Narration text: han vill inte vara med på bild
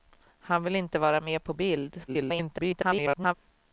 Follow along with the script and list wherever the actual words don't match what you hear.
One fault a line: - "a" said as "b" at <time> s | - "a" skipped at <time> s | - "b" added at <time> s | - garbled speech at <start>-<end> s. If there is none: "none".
- garbled speech at 2.1-3.3 s